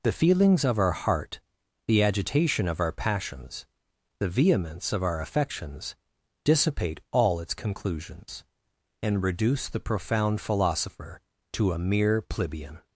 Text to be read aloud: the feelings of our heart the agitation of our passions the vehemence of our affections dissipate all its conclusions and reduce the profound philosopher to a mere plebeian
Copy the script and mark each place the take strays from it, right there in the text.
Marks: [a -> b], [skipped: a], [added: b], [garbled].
the feelings of our heart the agitation of our passions the vehemence of our affections dissipate all its conclusions and reduce the profound philosopher to a mere plebeian